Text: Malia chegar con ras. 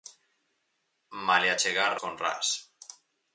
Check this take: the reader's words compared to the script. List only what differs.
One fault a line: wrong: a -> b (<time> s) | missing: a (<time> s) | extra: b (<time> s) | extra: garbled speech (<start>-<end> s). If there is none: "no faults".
no faults